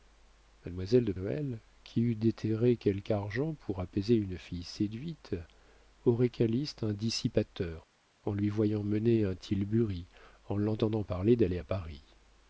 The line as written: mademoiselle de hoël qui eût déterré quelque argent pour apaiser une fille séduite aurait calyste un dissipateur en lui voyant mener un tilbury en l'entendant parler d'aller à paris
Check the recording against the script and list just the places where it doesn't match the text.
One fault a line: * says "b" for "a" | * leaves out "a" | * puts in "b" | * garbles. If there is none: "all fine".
all fine